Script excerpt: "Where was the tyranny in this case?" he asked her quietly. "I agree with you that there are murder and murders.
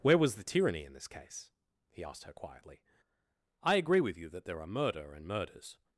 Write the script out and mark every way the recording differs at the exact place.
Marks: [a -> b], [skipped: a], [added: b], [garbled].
"Where was the tyranny in this case?" he asked her quietly. "I agree with you that there are murder and murders.